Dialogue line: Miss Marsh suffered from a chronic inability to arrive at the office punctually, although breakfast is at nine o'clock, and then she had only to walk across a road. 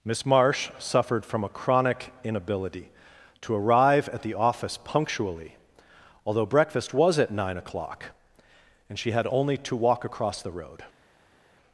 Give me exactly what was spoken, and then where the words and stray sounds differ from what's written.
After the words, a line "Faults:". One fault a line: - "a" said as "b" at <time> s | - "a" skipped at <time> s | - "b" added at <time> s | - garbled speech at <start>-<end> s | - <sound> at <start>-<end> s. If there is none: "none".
Miss Marsh suffered from a chronic inability to arrive at the office punctually, although breakfast was at nine o'clock, and she had only to walk across the road.
Faults:
- "is" said as "was" at 6.9 s
- "then" skipped at 9.0 s
- "a" said as "the" at 10.4 s